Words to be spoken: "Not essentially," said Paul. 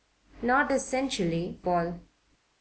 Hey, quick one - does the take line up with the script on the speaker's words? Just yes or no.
no